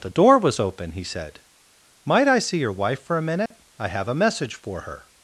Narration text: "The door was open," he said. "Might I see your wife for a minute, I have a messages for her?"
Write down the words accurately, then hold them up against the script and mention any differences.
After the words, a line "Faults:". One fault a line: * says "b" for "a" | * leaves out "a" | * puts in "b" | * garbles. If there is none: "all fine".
"The door was open," he said. "Might I see your wife for a minute, I have a message for her?"
Faults:
* says "message" for "messages"